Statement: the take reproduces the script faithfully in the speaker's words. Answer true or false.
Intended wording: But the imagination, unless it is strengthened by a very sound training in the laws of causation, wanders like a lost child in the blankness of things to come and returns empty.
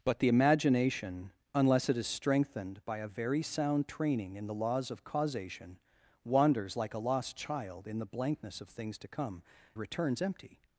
false